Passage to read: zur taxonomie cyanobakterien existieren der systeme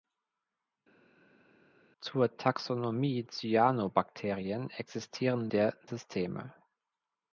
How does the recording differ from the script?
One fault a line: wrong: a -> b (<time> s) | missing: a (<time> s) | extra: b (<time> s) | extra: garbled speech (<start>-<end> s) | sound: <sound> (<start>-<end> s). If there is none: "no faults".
no faults